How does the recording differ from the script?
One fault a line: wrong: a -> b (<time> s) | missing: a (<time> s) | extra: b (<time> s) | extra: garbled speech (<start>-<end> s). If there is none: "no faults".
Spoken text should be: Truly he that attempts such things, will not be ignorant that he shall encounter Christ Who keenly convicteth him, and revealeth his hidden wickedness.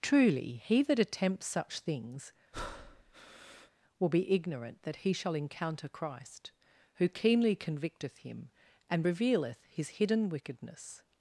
missing: not (4.1 s)